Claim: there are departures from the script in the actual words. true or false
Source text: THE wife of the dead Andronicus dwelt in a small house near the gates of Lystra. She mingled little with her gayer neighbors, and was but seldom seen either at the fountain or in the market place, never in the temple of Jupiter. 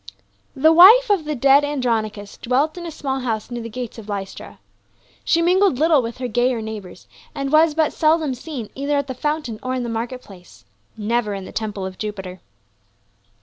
false